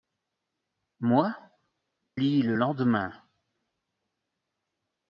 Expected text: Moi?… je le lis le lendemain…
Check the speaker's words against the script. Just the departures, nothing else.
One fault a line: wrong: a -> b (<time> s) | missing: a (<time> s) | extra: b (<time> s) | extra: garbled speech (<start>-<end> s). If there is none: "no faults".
missing: je le (1.3 s)